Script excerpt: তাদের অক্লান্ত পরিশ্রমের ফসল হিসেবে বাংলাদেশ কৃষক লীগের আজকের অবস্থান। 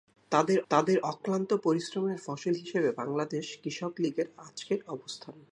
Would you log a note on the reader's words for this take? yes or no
yes